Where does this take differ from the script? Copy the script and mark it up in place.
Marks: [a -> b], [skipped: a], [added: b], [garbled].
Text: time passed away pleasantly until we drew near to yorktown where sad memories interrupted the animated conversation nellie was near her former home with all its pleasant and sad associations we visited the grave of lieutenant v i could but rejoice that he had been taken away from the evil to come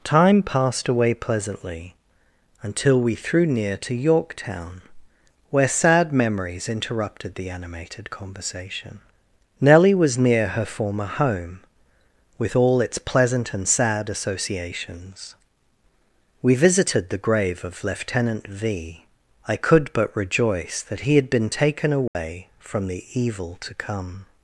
time passed away pleasantly until we [drew -> threw] near to yorktown where sad memories interrupted the animated conversation nellie was near her former home with all its pleasant and sad associations we visited the grave of lieutenant v i could but rejoice that he had been taken away from the evil to come